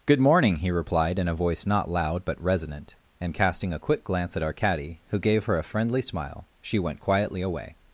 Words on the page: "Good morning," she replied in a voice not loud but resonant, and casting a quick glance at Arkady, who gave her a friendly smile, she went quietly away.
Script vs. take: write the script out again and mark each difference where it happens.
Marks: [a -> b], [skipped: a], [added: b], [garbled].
"Good morning," [she -> he] replied in a voice not loud but resonant, and casting a quick glance at Arkady, who gave her a friendly smile, she went quietly away.